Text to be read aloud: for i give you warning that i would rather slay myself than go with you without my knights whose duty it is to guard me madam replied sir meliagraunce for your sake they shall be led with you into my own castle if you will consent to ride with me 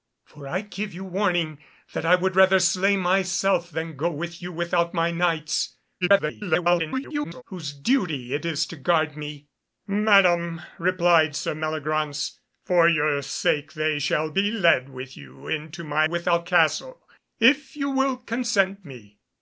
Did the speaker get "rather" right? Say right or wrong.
right